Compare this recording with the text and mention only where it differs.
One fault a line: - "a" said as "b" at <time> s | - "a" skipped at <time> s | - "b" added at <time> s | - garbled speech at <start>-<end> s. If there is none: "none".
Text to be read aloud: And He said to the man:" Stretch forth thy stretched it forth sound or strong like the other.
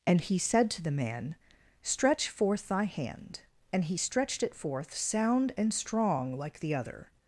- "hand And he" added at 2.9 s
- "or" said as "and" at 5.6 s